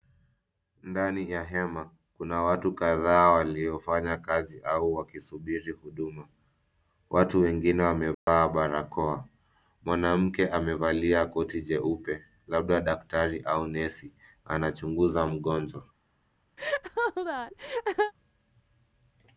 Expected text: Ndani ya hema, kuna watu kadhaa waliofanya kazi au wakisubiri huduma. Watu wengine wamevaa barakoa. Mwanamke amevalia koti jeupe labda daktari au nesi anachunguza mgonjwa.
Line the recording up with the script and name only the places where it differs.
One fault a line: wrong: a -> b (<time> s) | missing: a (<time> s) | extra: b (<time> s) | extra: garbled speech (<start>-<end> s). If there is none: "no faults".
no faults